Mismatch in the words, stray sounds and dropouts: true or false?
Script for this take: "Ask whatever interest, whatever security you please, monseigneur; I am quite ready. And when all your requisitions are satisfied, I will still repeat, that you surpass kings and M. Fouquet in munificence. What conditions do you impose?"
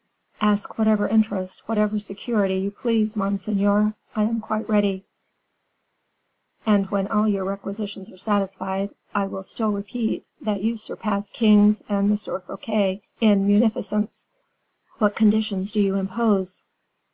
false